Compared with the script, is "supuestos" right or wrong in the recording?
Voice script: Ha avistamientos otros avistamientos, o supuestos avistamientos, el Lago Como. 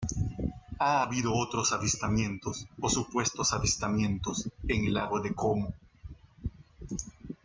right